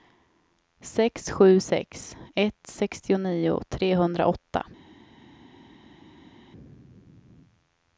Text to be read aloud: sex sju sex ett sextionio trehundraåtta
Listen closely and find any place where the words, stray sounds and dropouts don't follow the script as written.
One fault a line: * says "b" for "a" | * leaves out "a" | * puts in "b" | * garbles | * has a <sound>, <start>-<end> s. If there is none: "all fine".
all fine